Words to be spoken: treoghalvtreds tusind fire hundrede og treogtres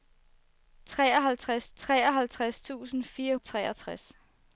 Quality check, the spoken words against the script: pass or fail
fail